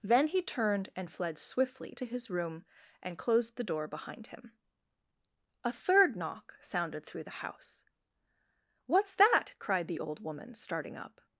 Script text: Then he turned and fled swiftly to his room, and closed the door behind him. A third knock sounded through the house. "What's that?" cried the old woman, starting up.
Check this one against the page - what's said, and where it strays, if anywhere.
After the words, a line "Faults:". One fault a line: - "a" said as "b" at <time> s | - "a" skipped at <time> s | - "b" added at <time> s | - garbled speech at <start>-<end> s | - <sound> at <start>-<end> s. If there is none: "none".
Then he turned and fled swiftly to his room, and closed the door behind him. A third knock sounded through the house. "What's that?" cried the old woman, starting up.
Faults:
none